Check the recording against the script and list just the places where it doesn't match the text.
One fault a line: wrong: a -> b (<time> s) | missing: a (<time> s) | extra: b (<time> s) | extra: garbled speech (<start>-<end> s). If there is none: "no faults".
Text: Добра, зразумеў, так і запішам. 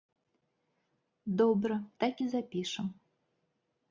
missing: зразумеў (1.8 s)